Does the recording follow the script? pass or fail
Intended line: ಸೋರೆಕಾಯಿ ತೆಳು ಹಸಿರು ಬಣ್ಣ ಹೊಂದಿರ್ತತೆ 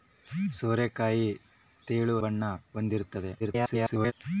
fail